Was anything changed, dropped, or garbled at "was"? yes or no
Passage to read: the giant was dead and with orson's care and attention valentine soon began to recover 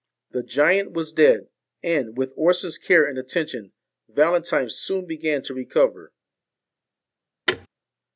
no